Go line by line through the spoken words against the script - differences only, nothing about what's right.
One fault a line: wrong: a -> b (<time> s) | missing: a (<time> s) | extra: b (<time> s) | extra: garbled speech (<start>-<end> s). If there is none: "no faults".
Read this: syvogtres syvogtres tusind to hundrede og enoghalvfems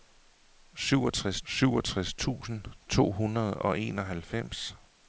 no faults